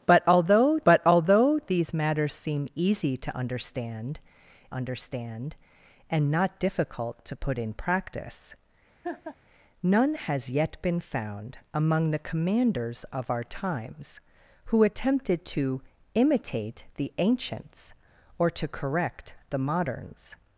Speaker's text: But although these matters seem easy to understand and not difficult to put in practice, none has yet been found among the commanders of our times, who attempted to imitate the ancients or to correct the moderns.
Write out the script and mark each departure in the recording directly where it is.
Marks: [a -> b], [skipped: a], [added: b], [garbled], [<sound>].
But although [added: but although] these matters seem easy to understand [added: understand] and not difficult to put in practice, [laugh] none has yet been found among the commanders of our times, who attempted to imitate the ancients or to correct the moderns.